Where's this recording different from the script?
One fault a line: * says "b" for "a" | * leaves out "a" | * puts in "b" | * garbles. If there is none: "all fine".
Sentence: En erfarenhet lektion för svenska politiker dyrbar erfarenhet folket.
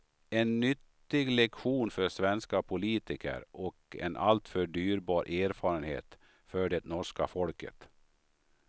* says "nyttig" for "erfarenhet"
* puts in "och en alltför"
* puts in "för det norska"